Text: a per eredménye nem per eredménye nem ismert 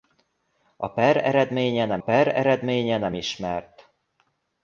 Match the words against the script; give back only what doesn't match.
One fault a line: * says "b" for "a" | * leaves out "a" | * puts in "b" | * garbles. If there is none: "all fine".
all fine